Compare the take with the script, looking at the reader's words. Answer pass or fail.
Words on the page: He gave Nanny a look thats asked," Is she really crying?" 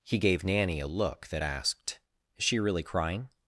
fail